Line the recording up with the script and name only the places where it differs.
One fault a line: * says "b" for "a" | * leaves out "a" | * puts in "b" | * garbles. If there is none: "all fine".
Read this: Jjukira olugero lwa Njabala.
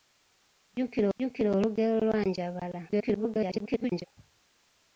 * puts in "jjukira"
* garbles